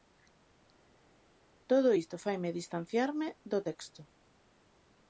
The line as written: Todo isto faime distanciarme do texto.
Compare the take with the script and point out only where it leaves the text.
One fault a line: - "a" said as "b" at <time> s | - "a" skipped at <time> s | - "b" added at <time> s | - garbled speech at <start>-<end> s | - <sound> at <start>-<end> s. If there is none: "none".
none